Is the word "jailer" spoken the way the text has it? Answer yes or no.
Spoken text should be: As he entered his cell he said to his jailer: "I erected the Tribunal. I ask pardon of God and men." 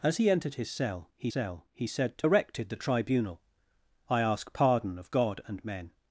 no